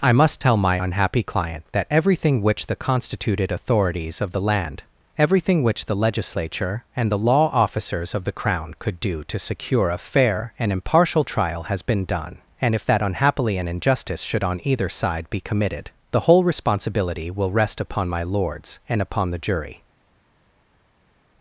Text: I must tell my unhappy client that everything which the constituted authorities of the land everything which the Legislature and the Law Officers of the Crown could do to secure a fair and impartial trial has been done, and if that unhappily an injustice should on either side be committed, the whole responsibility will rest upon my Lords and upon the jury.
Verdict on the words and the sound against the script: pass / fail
pass